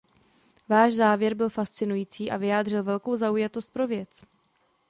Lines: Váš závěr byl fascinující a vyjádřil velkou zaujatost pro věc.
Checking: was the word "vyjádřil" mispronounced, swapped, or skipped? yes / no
no